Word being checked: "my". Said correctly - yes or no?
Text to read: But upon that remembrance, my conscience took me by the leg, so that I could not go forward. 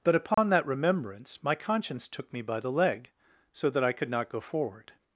yes